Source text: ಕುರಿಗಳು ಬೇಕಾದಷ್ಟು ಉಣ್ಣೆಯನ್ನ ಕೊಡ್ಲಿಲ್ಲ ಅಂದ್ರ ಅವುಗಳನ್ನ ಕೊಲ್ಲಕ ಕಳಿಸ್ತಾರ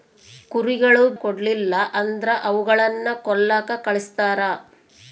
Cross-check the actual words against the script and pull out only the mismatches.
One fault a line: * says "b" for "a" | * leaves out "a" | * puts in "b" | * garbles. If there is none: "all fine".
* leaves out "ಬೇಕಾದಷ್ಟು ಉಣ್ಣೆಯನ್ನ"